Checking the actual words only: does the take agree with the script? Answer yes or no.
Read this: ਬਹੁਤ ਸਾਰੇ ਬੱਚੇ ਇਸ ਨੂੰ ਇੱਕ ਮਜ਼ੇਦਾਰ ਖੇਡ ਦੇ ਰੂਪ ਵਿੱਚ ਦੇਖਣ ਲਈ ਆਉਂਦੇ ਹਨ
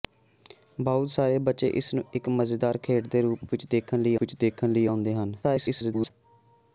no